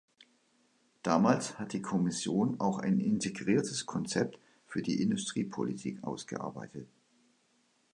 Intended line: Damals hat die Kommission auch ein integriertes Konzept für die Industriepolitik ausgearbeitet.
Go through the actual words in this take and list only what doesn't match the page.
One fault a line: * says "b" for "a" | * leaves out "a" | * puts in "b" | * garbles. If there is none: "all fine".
all fine